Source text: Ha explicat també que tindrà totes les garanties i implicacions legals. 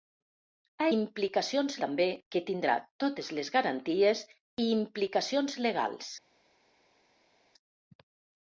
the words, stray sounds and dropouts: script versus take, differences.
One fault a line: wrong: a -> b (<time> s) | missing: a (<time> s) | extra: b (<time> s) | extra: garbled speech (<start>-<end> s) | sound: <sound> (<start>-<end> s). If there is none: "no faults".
wrong: explicat -> implicacions (1.0 s)